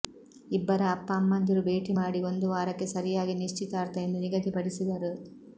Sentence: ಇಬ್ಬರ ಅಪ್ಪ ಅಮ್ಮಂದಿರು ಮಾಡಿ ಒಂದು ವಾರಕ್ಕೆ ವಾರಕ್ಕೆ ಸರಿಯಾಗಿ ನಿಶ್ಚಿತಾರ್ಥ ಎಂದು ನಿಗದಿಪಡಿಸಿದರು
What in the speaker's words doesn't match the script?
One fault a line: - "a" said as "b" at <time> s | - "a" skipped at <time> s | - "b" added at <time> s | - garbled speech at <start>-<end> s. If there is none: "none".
- "ಭೇಟಿ" added at 1.7 s
- "ವಾರಕ್ಕೆ" skipped at 2.9 s